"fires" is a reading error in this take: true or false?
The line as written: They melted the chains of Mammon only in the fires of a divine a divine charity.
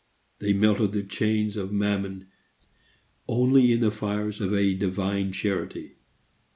false